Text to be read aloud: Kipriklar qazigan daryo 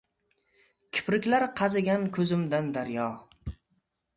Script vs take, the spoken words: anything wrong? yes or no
yes